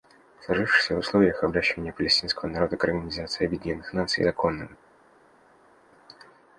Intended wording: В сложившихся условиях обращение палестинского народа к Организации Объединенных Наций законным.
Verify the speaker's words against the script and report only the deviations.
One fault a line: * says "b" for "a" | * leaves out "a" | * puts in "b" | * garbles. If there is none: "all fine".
all fine